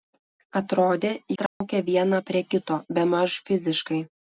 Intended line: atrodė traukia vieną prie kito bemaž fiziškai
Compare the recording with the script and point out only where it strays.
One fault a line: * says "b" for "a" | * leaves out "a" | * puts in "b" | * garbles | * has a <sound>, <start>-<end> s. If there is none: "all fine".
* has a dropout, 1.5-1.6 s